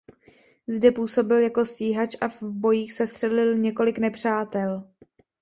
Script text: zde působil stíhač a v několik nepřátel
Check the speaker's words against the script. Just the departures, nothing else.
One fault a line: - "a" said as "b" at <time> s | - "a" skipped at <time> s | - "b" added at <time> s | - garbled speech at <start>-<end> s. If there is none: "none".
- "jako" added at 1.4 s
- "bojích sestřelil" added at 2.4 s